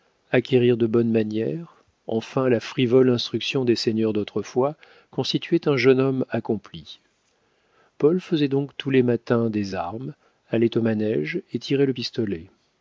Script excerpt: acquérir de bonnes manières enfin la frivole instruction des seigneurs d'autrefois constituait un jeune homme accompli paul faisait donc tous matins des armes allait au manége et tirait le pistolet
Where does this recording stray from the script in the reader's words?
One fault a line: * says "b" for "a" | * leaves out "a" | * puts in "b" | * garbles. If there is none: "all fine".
* puts in "les"